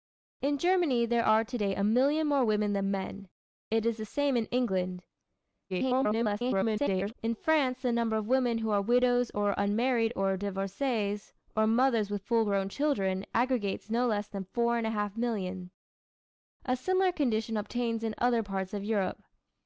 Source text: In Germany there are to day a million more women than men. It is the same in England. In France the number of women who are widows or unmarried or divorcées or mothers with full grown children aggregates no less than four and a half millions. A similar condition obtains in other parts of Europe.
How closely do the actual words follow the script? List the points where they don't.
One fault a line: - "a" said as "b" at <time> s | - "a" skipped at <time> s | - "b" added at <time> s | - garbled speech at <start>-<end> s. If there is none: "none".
- garbled speech at 5.7-7.1 s